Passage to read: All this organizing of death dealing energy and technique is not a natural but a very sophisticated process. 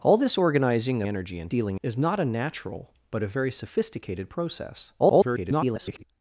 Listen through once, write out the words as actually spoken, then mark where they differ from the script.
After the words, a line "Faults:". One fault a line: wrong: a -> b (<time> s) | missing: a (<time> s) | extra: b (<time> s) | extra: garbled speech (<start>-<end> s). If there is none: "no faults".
All this organizing energy and dealing is not a natural but a very sophisticated process. [garbled]
Faults:
missing: of death dealing (1.0 s)
wrong: technique -> dealing (1.5 s)
extra: garbled speech (5.0-6.0 s)